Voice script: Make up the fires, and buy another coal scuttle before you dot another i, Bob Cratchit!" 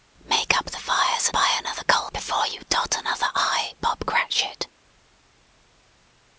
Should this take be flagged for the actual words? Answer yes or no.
yes